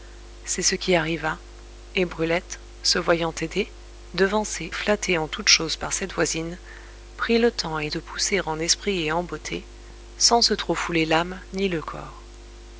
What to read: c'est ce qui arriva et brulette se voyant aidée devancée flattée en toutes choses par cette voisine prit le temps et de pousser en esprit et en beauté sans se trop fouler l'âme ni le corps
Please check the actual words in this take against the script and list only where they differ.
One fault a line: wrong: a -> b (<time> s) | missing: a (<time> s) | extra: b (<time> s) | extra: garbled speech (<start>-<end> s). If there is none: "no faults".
no faults